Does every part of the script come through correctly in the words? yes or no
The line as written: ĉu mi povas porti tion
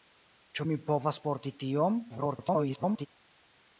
no